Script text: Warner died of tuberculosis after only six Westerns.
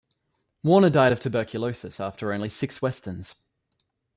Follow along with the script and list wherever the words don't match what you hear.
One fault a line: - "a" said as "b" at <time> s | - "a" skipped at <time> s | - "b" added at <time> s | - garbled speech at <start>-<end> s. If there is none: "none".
none